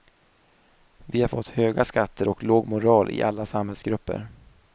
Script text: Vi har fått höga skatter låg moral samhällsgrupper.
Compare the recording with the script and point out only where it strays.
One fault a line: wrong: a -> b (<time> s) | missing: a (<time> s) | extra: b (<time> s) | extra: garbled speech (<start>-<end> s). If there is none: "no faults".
extra: och (2.3 s)
extra: i alla (3.1 s)